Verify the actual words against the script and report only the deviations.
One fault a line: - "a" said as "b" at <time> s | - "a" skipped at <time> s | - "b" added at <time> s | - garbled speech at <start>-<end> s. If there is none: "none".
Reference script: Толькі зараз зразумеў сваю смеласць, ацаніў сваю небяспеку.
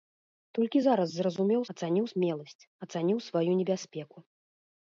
- "сваю" said as "ацаніў" at 1.8 s